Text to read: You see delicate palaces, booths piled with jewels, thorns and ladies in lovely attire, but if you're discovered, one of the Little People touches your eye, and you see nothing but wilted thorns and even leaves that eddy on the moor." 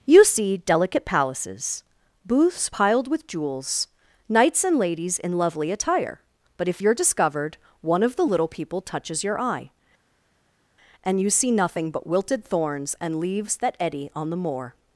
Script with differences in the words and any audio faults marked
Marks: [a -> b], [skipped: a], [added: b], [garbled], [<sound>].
You see delicate palaces, booths piled with jewels, [thorns -> knights] and ladies in lovely attire, but if you're discovered, one of the Little People touches your eye, and you see nothing but wilted thorns and [skipped: even] leaves that eddy on the moor."